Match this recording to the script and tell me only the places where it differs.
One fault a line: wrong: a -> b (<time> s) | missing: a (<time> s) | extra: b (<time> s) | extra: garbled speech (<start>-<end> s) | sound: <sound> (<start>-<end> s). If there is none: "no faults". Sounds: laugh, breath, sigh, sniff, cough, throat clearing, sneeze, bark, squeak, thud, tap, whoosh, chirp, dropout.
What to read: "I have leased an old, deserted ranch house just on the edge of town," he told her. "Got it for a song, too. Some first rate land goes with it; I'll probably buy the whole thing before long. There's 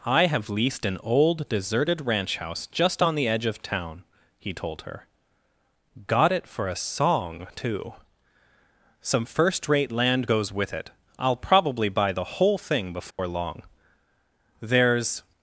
sound: dropout (13.1-13.2 s)